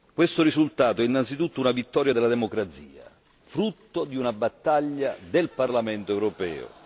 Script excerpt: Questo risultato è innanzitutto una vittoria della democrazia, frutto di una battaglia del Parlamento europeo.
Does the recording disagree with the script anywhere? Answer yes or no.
no